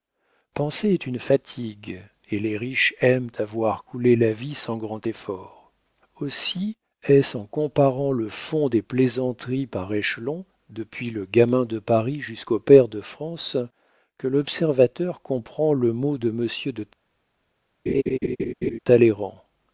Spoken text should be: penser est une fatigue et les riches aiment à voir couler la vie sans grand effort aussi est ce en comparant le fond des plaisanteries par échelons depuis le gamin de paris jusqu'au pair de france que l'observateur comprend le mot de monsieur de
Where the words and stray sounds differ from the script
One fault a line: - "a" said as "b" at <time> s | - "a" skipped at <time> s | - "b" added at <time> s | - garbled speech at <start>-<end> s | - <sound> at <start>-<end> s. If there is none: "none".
- laugh at 17.9-18.8 s